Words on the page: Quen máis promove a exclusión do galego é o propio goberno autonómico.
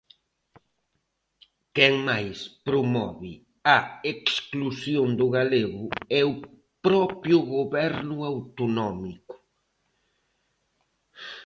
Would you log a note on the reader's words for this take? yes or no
no